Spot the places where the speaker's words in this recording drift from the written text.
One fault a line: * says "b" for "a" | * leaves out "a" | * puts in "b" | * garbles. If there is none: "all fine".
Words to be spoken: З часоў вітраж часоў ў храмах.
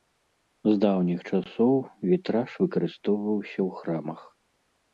* puts in "даўніх"
* says "выкарыстоўваўся" for "часоў"